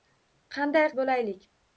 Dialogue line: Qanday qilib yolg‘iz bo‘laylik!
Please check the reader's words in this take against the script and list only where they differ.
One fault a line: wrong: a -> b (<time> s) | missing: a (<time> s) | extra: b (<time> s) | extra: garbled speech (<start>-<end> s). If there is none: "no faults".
missing: qilib yolg‘iz (0.9 s)